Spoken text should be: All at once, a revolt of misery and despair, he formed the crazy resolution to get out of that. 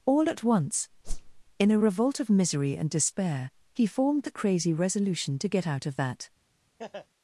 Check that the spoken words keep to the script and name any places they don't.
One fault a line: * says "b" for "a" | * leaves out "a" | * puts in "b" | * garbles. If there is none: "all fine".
* puts in "in"